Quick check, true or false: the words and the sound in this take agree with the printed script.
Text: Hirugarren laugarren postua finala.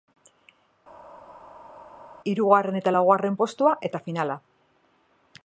false